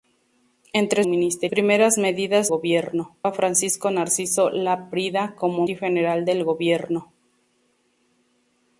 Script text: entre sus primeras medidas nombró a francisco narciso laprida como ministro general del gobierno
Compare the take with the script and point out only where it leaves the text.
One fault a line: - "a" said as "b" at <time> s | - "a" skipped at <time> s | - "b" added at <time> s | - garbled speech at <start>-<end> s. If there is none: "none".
- "sus" said as "ministro" at 1.0 s
- "nombró" said as "gobierno" at 2.5 s
- "ministro" skipped at 5.6 s